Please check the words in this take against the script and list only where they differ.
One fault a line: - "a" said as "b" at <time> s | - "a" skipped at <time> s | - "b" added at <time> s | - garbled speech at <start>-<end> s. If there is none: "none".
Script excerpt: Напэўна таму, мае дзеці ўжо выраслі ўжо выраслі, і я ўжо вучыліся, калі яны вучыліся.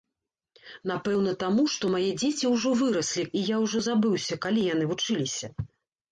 - "што" added at 1.7 s
- "ўжо выраслі" skipped at 3.3 s
- "вучыліся" said as "забыўся" at 3.9 s